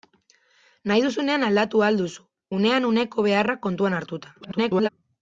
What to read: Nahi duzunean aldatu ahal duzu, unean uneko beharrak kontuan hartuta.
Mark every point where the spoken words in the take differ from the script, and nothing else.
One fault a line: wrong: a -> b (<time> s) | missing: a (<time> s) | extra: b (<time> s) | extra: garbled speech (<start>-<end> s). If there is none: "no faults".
extra: garbled speech (4.4-4.9 s)